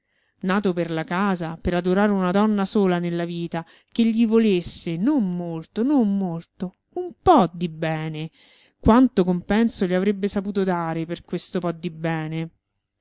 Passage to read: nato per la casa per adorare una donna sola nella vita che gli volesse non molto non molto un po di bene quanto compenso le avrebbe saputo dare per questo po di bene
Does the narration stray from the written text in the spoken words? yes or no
no